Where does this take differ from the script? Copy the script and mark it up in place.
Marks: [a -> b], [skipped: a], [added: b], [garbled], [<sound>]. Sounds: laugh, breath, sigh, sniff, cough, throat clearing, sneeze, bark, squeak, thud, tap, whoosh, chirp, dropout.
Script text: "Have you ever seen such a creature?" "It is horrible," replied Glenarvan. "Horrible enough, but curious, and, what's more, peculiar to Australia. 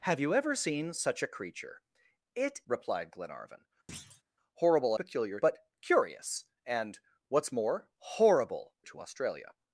"Have you ever seen such a creature?" "It [skipped: is horrible,"] replied Glenarvan. [thud] "Horrible [enough, -> peculiar] but curious, and, what's more, [peculiar -> horrible] to Australia.